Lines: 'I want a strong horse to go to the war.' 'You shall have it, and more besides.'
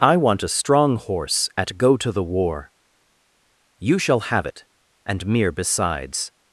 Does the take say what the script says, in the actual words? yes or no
no